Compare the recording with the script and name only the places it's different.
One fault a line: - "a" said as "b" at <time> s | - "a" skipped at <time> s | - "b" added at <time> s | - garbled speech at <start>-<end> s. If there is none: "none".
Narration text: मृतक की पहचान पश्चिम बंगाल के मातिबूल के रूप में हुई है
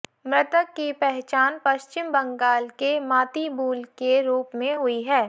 none